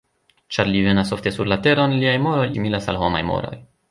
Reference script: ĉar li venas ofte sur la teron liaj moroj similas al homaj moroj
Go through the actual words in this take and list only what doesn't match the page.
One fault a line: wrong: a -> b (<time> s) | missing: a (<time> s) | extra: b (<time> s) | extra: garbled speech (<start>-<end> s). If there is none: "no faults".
no faults